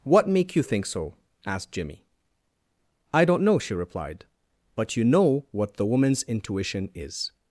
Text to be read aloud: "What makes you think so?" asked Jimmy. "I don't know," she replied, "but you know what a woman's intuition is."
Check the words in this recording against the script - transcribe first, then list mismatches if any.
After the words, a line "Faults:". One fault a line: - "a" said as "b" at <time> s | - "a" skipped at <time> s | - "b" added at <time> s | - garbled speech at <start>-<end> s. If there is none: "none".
"What make you think so?" asked Jimmy. "I don't know," she replied, "but you know what the woman's intuition is."
Faults:
- "makes" said as "make" at 0.3 s
- "a" said as "the" at 5.8 s